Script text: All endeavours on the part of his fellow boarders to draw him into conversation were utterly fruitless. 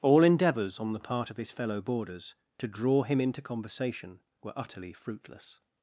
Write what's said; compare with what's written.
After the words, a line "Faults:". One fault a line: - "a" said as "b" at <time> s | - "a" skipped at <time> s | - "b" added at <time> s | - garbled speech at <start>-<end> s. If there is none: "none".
All endeavours on the part of his fellow boarders to draw him into conversation were utterly fruitless.
Faults:
none